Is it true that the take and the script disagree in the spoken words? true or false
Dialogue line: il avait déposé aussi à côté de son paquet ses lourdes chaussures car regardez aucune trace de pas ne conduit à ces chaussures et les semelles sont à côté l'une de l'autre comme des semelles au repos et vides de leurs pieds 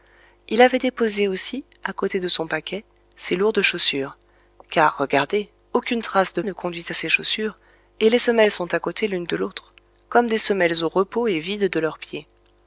true